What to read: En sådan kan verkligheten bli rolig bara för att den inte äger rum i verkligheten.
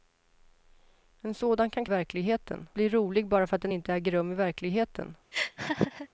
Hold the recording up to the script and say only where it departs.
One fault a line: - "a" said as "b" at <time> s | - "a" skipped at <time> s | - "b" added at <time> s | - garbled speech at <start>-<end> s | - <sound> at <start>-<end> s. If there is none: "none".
- laugh at 5.3-6.1 s